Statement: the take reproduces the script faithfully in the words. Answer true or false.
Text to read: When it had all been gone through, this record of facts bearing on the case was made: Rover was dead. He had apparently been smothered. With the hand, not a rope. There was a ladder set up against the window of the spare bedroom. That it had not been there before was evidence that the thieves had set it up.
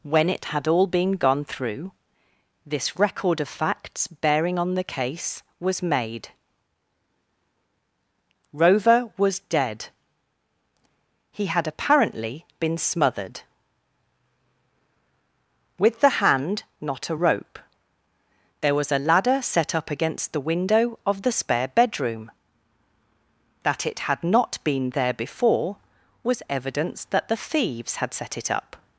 true